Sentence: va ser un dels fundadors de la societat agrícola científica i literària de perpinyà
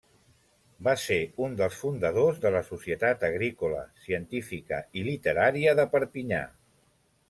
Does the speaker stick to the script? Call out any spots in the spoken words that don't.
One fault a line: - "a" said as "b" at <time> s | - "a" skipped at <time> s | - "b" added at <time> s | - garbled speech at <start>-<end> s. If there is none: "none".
none